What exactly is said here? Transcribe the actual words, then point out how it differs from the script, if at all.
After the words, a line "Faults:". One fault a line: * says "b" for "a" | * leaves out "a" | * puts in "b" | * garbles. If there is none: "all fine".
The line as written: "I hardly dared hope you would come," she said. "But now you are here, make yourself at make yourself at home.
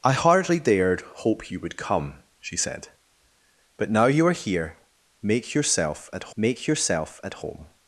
"I hardly dared hope you would come," she said. "But now you are here, make yourself at make yourself at home.
Faults:
all fine